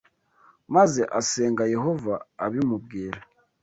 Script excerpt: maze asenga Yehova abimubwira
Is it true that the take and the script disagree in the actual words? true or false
false